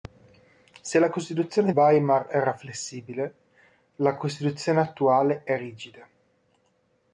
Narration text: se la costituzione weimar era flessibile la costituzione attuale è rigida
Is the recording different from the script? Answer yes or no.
no